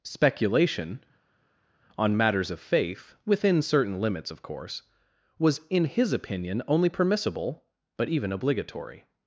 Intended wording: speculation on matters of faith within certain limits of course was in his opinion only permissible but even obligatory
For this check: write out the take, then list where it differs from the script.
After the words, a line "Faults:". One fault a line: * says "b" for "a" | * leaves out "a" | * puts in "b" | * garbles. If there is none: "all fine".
speculation on matters of faith within certain limits of course was in his opinion only permissible but even obligatory
Faults:
all fine